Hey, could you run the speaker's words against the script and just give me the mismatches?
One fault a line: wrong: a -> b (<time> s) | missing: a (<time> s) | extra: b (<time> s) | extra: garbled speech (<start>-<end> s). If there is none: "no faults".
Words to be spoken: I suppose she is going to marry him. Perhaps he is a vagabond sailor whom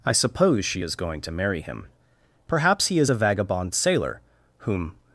no faults